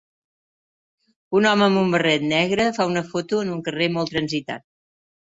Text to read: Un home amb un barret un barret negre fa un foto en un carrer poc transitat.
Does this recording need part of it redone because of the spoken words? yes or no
yes